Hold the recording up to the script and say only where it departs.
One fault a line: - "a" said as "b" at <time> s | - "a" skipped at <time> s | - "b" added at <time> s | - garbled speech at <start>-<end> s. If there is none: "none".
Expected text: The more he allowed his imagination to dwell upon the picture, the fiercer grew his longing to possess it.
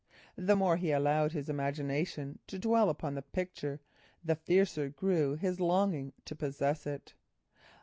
none